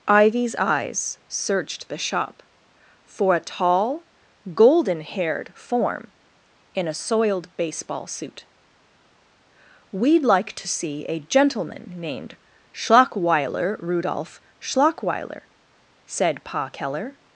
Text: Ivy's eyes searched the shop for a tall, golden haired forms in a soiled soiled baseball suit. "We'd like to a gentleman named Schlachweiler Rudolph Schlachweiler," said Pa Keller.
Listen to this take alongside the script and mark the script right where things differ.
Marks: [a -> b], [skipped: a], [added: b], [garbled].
Ivy's eyes searched the shop for a tall, golden haired [forms -> form] in a soiled [skipped: soiled] baseball suit. "We'd like to [added: see] a gentleman named Schlachweiler Rudolph Schlachweiler," said Pa Keller.